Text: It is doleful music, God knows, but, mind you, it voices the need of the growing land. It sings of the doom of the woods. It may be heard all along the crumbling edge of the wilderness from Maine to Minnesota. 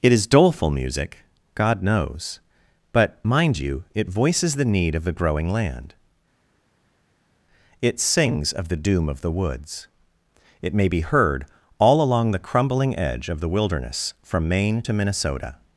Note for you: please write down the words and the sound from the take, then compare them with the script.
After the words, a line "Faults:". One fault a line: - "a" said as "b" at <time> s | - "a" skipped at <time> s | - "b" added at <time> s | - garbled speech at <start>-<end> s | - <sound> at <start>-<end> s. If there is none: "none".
It is doleful music, God knows, but, mind you, it voices the need of the growing land. It sings of the doom of the woods. It may be heard all along the crumbling edge of the wilderness from Maine to Minnesota.
Faults:
none